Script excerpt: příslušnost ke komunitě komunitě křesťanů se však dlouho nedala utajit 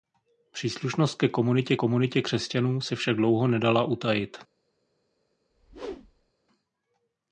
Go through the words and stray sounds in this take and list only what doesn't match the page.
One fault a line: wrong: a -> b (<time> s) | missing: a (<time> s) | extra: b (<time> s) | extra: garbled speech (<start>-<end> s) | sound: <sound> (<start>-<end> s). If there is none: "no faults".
sound: whoosh (5.5-6.3 s)